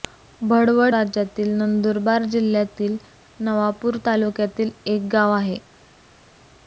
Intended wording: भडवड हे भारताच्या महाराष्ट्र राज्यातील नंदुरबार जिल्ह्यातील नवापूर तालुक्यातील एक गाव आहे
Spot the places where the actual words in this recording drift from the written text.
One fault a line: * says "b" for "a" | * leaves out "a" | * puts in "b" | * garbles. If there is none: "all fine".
* leaves out "हे भारताच्या महाराष्ट्र"